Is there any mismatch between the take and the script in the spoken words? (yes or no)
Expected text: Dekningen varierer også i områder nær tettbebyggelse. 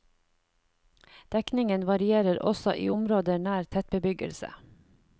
no